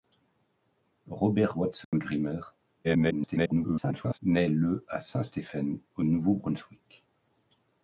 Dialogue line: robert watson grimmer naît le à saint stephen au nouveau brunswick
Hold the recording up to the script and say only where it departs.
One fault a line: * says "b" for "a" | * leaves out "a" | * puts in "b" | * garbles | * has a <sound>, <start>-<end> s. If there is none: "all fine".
* has a dropout, 1.8-1.9 s
* garbles